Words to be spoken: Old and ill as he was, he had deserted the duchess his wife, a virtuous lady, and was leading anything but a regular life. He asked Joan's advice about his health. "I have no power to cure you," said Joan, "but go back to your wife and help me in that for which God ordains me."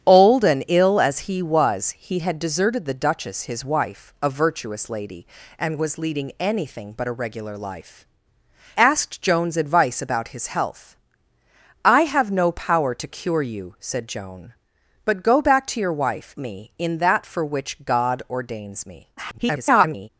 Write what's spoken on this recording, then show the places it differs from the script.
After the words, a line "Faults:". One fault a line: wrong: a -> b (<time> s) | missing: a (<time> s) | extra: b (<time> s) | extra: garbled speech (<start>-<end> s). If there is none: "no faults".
Old and ill as he was, he had deserted the duchess his wife, a virtuous lady, and was leading anything but a regular life. Asked Joan's advice about his health. "I have no power to cure you," said Joan, "but go back to your wife me in that for which God ordains me." [garbled]
Faults:
missing: He (8.1 s)
missing: and help (16.3 s)
extra: garbled speech (19.2-20.1 s)